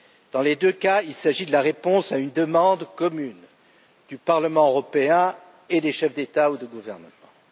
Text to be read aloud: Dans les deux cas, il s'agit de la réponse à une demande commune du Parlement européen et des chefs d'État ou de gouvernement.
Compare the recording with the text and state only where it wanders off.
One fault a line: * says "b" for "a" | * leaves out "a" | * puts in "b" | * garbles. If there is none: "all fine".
all fine